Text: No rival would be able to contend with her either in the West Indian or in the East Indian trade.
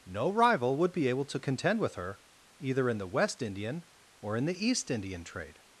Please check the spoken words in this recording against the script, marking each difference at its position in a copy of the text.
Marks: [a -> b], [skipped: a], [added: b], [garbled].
No rival would be able to contend with her either in the West Indian or in the East Indian trade.